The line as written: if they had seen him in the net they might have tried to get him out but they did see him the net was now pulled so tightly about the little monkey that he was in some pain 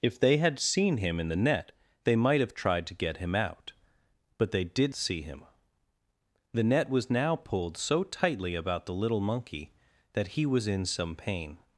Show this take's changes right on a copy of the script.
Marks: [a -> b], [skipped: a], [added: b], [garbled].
if they had seen him in the net they might have tried to get him out but they did see him the net was now pulled so tightly about the little monkey that he was in some pain